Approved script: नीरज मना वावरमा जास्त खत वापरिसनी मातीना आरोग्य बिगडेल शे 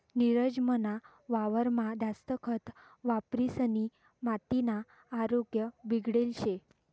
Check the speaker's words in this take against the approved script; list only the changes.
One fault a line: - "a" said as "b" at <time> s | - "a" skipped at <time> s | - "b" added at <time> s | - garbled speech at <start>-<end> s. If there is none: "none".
none